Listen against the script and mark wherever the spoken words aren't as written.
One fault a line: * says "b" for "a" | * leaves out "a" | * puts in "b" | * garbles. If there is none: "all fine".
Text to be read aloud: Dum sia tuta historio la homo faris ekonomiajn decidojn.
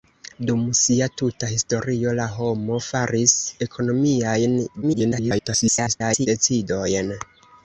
* garbles